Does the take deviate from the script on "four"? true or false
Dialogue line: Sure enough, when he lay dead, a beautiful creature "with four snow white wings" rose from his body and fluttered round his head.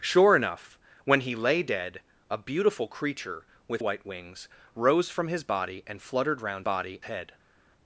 true